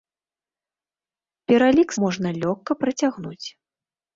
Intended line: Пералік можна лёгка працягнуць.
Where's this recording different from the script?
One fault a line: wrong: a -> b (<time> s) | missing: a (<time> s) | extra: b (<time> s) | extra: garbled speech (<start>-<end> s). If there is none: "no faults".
no faults